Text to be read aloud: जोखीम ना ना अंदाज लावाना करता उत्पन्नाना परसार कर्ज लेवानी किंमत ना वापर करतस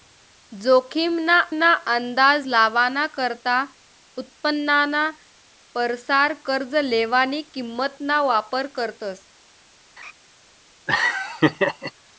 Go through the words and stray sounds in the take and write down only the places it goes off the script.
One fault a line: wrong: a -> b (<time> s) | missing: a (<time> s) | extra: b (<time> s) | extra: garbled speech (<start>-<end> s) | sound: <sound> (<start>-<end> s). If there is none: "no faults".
sound: laugh (10.0-10.1 s)
sound: laugh (10.9-11.9 s)